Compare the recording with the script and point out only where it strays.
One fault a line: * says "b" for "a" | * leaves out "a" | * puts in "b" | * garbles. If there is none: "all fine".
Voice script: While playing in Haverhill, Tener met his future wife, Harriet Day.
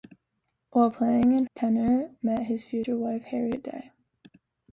* leaves out "Haverhill"